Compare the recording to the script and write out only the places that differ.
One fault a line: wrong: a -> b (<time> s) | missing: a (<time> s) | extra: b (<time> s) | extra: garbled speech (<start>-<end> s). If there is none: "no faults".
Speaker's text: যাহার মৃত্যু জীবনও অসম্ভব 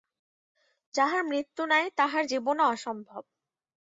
extra: নাই তাহার (1.6 s)